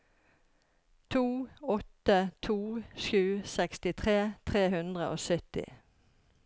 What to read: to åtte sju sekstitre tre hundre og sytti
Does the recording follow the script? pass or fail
fail